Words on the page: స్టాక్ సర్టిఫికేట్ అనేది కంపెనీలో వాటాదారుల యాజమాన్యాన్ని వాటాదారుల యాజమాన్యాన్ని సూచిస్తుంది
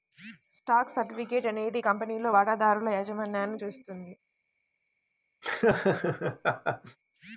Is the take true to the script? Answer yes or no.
no